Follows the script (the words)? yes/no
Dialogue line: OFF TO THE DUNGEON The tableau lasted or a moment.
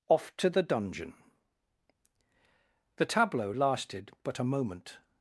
no